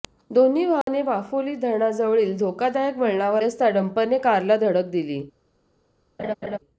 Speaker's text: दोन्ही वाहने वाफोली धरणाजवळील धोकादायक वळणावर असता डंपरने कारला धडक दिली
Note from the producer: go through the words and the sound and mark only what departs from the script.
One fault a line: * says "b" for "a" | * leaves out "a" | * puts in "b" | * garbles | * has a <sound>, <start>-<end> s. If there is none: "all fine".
* has a dropout, 0.8-0.9 s
* has a laugh, 6.2-6.6 s